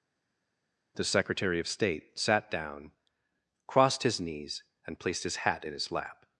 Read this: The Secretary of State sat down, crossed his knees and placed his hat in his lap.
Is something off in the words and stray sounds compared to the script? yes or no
no